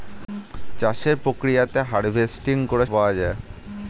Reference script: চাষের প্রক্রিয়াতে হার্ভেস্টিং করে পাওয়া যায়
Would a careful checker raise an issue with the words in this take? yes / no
no